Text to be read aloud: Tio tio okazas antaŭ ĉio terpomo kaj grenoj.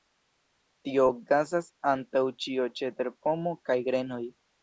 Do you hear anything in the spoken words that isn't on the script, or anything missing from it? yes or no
yes